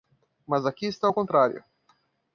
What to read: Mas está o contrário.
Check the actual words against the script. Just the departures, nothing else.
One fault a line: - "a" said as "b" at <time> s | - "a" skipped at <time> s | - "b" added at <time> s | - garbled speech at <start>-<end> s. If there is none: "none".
- "aqui" added at 0.7 s